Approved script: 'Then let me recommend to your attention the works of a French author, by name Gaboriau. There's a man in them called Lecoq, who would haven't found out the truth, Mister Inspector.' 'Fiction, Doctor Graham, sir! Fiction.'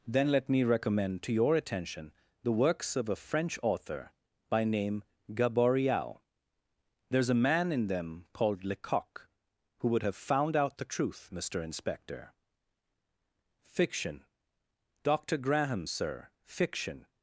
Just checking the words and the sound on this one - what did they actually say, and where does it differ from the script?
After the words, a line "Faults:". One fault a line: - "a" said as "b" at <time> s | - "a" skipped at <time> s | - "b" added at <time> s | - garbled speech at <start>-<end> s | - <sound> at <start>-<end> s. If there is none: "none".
'Then let me recommend to your attention the works of a French author, by name Gaboriau. There's a man in them called Lecoq, who would have found out the truth, Mister Inspector.' 'Fiction, Doctor Graham, sir! Fiction.'
Faults:
- "haven't" said as "have" at 10.0 s